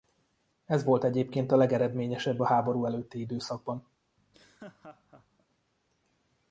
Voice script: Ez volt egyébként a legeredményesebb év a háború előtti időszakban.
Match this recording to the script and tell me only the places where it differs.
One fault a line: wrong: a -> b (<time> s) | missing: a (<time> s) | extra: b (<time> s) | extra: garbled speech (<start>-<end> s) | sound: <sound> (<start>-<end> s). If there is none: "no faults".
missing: év (2.4 s)
sound: laugh (4.2-5.5 s)